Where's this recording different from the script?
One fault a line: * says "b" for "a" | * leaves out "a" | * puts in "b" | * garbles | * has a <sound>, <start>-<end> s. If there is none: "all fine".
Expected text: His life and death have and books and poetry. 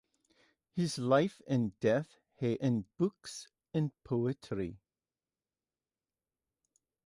all fine